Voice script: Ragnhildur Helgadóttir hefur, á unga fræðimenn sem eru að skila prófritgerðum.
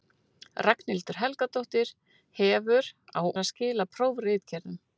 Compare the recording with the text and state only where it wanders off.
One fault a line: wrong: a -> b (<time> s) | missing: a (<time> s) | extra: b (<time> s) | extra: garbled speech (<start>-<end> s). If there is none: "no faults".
missing: unga fræðimenn sem (3.2 s)